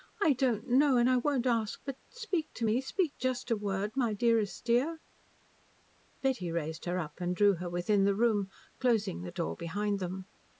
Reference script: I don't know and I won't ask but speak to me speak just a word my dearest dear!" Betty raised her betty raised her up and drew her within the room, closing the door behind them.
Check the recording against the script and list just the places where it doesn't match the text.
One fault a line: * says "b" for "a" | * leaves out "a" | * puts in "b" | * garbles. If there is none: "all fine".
* leaves out "betty raised her"